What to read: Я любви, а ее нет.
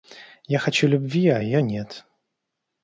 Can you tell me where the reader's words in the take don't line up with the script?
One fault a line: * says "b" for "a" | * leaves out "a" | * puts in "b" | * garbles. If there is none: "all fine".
* puts in "хочу"